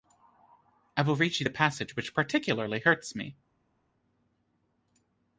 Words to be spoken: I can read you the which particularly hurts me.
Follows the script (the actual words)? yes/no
no